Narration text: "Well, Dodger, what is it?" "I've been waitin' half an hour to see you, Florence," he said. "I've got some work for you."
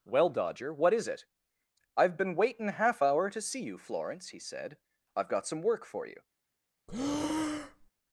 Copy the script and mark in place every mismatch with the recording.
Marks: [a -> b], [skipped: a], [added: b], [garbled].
"Well, Dodger, what is it?" "I've been waitin' half [skipped: an] hour to see you, Florence," he said. "I've got some work for you."